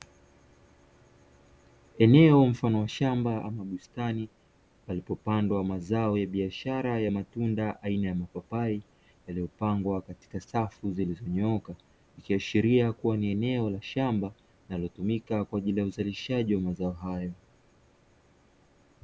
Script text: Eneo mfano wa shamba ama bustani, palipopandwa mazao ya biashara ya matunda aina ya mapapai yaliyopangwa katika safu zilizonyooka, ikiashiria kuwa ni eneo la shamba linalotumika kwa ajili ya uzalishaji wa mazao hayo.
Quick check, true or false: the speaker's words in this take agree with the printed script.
true